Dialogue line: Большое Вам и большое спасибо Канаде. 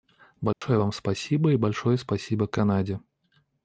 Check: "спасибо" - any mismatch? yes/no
no